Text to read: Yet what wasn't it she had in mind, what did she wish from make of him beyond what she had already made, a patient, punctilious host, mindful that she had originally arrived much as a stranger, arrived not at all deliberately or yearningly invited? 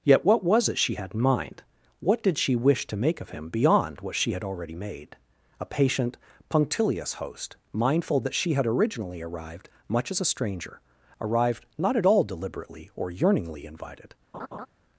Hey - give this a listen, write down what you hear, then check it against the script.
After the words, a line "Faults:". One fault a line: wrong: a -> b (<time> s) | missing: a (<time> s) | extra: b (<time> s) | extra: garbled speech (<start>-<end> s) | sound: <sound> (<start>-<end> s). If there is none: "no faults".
Yet what was it she had in mind, what did she wish to make of him beyond what she had already made, a patient, punctilious host, mindful that she had originally arrived much as a stranger, arrived not at all deliberately or yearningly invited?
Faults:
wrong: wasn't -> was (0.4 s)
wrong: from -> to (2.9 s)
sound: laugh (14.3-14.7 s)